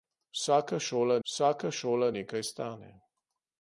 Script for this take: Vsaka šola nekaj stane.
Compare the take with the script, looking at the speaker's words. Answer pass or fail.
fail